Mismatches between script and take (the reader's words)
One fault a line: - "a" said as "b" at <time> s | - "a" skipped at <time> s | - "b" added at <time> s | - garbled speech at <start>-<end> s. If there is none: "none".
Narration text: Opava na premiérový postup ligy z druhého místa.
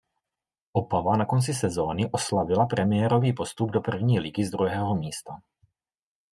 - "konci sezóny oslavila" added at 1.2 s
- "do první" added at 3.7 s